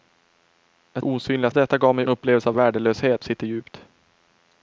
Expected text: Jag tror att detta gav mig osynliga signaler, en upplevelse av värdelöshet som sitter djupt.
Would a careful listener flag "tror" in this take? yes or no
yes